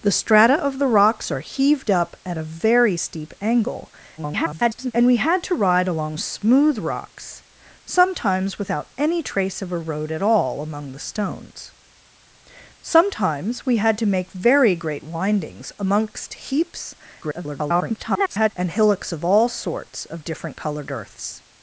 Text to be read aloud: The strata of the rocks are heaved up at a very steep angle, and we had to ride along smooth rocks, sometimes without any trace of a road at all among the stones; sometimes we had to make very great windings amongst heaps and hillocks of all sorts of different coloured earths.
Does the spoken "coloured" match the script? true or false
true